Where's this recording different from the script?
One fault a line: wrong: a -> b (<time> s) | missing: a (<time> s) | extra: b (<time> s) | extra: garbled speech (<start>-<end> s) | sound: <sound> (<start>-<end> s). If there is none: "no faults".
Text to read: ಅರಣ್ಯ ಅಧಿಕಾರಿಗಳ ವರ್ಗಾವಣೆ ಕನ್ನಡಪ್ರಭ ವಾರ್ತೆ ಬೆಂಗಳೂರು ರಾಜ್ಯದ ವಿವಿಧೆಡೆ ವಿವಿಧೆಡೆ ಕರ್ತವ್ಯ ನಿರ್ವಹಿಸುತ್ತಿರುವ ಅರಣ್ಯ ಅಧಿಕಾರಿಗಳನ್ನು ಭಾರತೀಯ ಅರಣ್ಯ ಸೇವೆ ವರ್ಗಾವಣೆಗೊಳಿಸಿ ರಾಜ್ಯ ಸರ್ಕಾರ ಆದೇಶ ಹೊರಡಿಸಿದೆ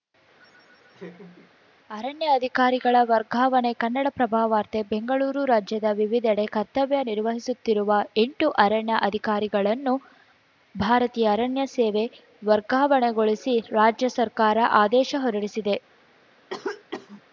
sound: laugh (0.4-1.5 s)
missing: ವಿವಿಧೆಡೆ (6.5 s)
extra: ಎಂಟು (8.2 s)
sound: cough (16.5-17.2 s)